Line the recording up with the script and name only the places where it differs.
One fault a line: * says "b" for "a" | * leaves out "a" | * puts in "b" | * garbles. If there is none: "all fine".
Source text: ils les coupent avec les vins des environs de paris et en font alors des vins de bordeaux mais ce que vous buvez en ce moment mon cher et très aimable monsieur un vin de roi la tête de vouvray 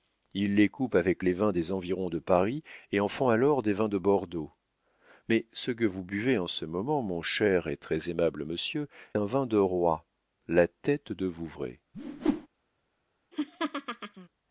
all fine